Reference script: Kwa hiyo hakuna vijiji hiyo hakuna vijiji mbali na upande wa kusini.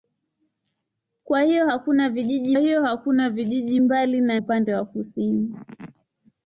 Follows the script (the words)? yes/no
yes